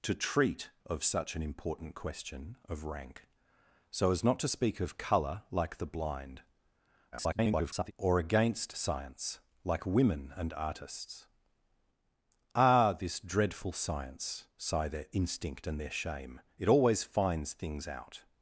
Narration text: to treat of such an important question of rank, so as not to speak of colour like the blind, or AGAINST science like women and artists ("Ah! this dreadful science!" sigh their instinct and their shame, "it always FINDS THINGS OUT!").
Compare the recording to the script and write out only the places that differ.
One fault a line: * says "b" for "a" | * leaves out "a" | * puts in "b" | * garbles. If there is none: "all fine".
* garbles